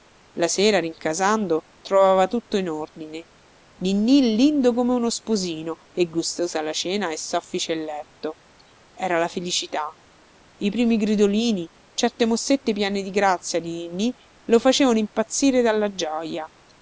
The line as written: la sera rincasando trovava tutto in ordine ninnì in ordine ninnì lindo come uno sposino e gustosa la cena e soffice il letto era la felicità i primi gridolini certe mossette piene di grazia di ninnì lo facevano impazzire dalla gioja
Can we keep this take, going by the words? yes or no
no